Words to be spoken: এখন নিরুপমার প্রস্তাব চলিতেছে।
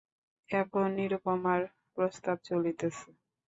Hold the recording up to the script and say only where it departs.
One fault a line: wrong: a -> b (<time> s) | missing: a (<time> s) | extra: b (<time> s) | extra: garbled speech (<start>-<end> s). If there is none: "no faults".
no faults